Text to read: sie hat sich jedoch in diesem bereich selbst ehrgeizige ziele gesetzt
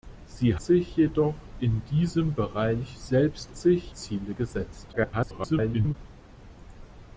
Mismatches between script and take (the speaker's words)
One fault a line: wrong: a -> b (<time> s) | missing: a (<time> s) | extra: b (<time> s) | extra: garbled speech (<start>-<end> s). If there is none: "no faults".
missing: hat (0.6 s)
wrong: ehrgeizige -> sich (3.5 s)
extra: garbled speech (4.9-6.0 s)